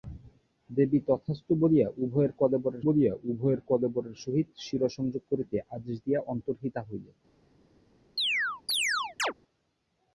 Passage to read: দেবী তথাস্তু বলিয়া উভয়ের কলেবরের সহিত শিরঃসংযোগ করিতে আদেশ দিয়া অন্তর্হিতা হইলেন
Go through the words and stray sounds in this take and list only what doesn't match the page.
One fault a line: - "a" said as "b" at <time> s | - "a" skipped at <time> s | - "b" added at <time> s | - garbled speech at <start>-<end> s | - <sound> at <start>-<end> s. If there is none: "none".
- "বলিয়া উভয়ের কলেবরের" added at 2.8 s
- chirp at 8.2-9.3 s